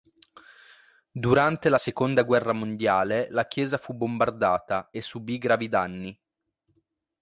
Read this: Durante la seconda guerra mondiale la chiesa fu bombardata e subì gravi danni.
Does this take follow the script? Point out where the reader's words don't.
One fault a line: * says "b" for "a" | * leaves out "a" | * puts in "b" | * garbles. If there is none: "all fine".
all fine